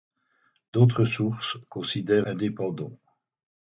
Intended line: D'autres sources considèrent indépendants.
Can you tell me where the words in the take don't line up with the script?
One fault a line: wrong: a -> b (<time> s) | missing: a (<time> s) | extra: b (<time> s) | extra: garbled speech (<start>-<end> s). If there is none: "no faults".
no faults